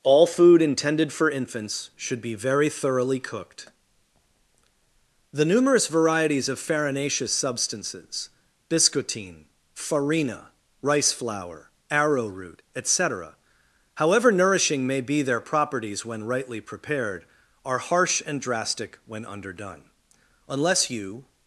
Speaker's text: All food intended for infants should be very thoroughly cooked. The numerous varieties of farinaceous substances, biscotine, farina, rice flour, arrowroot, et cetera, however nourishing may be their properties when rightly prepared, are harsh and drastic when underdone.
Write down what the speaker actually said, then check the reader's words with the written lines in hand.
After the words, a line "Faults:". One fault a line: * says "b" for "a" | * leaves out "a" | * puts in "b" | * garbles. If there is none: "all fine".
All food intended for infants should be very thoroughly cooked. The numerous varieties of farinaceous substances, biscotine, farina, rice flour, arrowroot, et cetera, however nourishing may be their properties when rightly prepared, are harsh and drastic when underdone. Unless you
Faults:
* puts in "Unless you"